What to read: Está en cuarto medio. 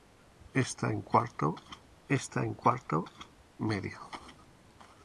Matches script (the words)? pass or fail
fail